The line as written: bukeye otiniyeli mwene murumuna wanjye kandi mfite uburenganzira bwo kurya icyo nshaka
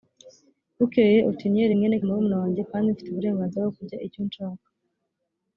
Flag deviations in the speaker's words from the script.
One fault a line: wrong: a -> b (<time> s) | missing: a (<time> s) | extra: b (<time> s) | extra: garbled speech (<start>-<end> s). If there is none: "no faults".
no faults